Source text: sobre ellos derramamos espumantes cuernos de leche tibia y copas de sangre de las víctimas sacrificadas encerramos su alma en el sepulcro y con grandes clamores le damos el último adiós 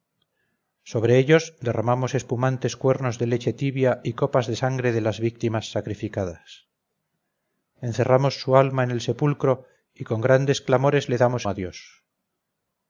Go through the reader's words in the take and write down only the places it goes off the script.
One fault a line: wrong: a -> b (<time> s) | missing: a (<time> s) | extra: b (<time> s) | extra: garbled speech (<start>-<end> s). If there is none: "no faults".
missing: el último (11.4 s)